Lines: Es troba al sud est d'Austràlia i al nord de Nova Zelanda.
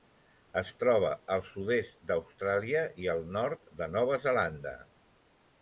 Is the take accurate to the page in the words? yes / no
yes